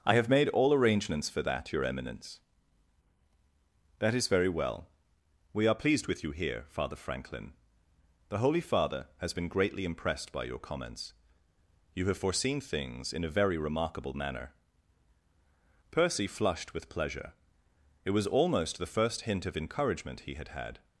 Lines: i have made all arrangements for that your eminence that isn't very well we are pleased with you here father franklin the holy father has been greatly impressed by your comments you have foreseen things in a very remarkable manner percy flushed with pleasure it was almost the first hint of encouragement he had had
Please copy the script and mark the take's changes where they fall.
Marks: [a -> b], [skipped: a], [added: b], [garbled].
i have made all arrangements for that your eminence that [isn't -> is] very well we are pleased with you here father franklin the holy father has been greatly impressed by your comments you have foreseen things in a very remarkable manner percy flushed with pleasure it was almost the first hint of encouragement he had had